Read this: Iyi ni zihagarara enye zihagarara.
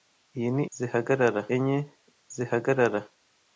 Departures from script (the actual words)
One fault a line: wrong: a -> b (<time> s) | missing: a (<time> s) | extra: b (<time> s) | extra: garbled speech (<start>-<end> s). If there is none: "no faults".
no faults